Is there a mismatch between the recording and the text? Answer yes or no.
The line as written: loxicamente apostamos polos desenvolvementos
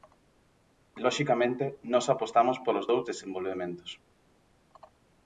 yes